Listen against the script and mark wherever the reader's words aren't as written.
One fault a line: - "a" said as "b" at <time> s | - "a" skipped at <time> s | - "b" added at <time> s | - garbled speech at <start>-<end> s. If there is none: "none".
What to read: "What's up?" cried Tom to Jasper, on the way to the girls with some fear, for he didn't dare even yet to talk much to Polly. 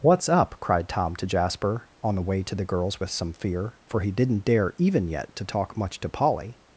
none